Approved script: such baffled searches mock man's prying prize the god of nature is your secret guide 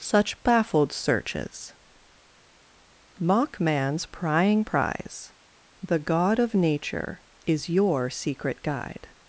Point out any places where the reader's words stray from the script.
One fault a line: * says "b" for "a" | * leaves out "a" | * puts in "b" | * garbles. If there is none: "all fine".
all fine